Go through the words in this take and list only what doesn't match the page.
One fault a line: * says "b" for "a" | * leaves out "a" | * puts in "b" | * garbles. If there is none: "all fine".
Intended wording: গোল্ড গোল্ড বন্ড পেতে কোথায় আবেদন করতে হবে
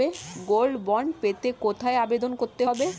* leaves out "গোল্ড"